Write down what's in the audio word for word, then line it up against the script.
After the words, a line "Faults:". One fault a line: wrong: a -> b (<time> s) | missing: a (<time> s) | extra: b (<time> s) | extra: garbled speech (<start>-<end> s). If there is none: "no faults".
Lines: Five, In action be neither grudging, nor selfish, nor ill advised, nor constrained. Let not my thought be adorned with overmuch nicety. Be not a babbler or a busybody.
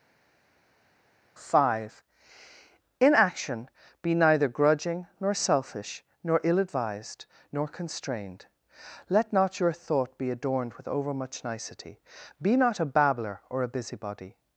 Five, In action be neither grudging, nor selfish, nor ill advised, nor constrained. Let not your thought be adorned with overmuch nicety. Be not a babbler or a busybody.
Faults:
wrong: my -> your (9.6 s)